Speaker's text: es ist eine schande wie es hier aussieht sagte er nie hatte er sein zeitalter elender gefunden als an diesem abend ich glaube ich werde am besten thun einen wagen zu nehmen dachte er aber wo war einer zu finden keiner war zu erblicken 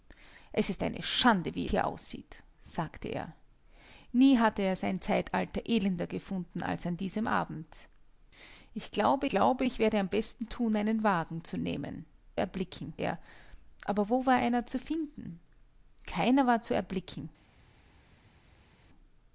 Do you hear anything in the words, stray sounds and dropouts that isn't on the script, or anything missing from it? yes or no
yes